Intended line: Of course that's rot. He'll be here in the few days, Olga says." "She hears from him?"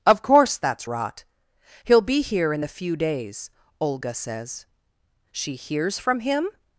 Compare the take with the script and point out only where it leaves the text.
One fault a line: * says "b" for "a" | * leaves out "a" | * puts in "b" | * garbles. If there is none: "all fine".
all fine